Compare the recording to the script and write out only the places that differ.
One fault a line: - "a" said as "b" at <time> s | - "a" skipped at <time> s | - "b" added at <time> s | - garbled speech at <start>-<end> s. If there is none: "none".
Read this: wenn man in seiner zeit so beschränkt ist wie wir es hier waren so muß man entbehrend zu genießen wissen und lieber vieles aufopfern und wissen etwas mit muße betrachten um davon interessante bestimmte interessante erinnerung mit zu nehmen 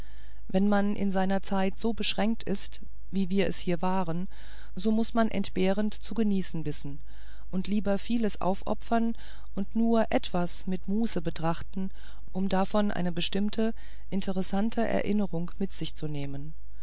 - "wissen" said as "nur" at 9.8 s
- "interessante" said as "eine" at 12.9 s
- "sich" added at 15.7 s